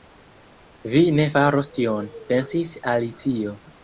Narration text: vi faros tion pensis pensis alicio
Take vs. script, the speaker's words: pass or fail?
fail